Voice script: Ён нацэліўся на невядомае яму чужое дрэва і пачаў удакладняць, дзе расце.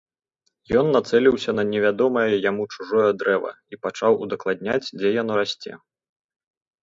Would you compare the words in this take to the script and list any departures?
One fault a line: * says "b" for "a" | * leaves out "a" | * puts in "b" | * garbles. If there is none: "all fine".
* puts in "яно"